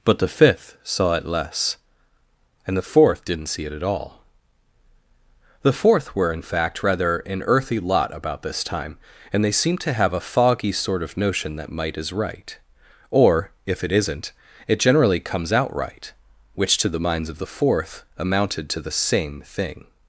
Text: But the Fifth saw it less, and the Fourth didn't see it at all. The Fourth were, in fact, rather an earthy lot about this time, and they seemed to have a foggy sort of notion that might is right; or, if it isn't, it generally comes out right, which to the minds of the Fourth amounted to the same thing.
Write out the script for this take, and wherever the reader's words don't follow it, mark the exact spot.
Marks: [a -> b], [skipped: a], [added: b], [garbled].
But the Fifth saw it less, and the Fourth didn't see it at all. The Fourth were, in fact, rather an earthy lot about this time, and they seemed to have a foggy sort of notion that might is right; or, if it isn't, it generally comes out right, which to the minds of the Fourth amounted to the same thing.